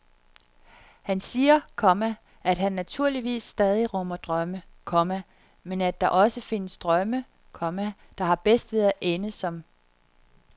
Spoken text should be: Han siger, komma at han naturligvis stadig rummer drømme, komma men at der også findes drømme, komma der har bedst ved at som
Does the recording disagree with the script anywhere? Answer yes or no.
yes